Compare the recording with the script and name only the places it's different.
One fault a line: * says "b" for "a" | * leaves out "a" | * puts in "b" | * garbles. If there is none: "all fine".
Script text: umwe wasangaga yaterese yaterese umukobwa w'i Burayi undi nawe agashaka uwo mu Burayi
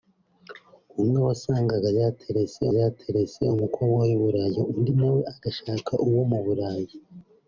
all fine